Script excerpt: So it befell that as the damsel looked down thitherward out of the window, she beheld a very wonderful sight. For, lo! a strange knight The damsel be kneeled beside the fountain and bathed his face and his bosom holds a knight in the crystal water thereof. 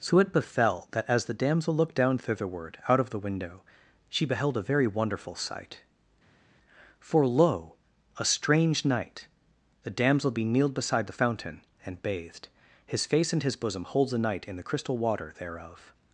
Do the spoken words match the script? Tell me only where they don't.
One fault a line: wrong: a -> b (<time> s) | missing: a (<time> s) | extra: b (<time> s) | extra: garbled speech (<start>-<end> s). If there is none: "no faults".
no faults